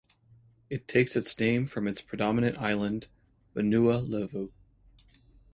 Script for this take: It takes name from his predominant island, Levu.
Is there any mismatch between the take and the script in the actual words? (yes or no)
yes